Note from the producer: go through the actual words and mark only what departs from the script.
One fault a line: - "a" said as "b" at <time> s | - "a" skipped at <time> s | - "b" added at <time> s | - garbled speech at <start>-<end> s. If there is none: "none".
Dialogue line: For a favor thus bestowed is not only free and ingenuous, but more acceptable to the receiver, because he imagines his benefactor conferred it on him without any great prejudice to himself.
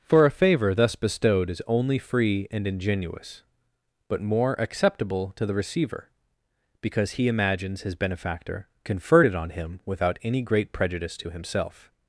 - "not" skipped at 1.6 s